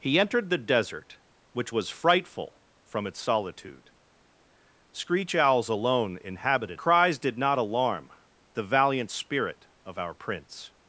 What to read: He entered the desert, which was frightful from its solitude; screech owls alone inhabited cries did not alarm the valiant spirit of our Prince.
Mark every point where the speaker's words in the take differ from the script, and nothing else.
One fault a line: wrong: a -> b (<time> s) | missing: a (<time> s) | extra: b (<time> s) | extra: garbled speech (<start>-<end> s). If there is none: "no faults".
no faults